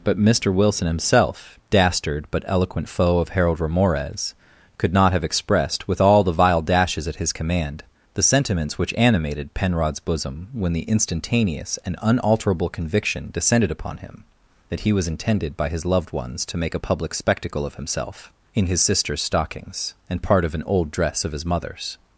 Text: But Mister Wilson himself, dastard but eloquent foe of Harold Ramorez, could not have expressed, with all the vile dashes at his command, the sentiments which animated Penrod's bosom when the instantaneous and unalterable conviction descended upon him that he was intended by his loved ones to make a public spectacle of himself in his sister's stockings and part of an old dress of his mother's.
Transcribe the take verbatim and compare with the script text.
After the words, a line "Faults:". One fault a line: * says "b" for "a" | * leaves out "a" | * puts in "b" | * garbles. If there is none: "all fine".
But Mister Wilson himself, dastard but eloquent foe of Harold Ramorez, could not have expressed, with all the vile dashes at his command, the sentiments which animated Penrod's bosom when the instantaneous and unalterable conviction descended upon him that he was intended by his loved ones to make a public spectacle of himself in his sister's stockings and part of an old dress of his mother's.
Faults:
all fine